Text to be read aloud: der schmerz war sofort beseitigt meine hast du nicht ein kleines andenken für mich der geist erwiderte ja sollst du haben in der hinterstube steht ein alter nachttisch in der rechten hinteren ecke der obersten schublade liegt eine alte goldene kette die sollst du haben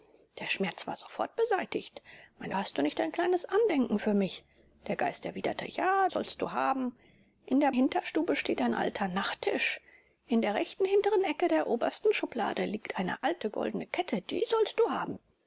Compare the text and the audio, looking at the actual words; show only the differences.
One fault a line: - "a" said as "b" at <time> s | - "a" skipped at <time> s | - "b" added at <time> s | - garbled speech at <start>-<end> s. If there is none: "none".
none